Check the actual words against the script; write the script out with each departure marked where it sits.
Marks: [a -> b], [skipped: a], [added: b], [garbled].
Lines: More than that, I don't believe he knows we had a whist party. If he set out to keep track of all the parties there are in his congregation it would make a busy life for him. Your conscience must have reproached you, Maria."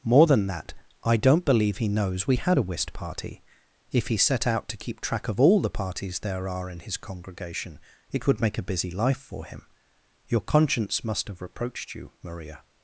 More than that, I don't believe he knows we had a whist party. If he set out to keep track of all the parties there are in his congregation it would make a busy life for him. Your conscience must have reproached you, Maria."